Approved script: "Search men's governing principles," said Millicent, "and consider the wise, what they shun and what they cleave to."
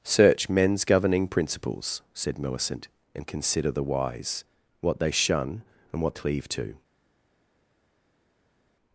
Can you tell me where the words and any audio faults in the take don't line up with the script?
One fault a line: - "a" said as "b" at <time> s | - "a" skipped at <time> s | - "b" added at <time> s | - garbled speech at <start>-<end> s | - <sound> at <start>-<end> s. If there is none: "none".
- "they" skipped at 6.2 s